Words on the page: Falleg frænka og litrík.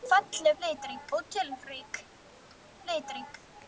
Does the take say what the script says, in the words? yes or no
no